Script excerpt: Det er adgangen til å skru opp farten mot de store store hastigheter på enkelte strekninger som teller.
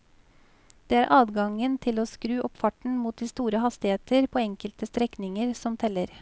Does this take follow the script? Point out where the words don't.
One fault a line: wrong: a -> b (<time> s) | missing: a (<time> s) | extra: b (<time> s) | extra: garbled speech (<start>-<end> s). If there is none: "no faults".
missing: store (3.6 s)